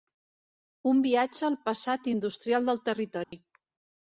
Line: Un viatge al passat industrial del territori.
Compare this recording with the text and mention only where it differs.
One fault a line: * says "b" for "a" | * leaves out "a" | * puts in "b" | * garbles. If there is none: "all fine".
all fine